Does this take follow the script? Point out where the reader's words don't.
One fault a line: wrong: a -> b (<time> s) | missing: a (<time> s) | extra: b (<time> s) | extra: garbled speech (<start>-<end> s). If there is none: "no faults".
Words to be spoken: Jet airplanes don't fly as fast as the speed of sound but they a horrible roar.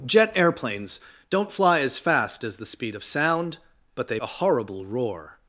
no faults